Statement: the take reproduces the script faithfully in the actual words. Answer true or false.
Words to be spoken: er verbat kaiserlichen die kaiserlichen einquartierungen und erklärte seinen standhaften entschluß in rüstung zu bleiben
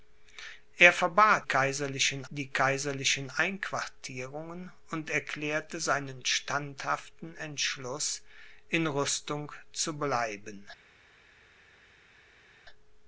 true